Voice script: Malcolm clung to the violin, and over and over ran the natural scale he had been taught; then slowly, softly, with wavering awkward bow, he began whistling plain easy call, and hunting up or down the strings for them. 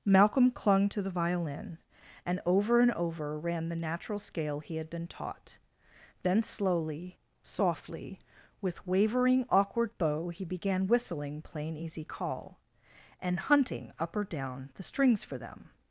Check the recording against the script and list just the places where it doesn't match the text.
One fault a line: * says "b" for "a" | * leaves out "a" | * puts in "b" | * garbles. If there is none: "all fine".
all fine